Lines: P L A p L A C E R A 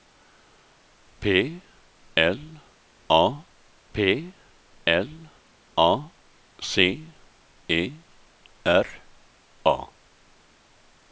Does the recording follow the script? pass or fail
pass